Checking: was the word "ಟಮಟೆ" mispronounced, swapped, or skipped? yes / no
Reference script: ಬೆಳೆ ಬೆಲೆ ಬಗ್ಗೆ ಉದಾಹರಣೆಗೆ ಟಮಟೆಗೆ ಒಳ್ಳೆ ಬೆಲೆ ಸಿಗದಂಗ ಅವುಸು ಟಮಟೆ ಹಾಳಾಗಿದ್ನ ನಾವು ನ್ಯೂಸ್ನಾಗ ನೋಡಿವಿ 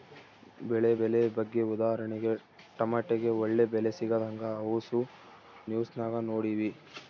yes